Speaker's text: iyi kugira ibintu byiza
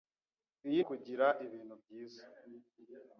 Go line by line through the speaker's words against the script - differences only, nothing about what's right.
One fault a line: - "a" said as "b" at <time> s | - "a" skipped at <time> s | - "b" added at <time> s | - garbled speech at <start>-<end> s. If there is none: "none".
none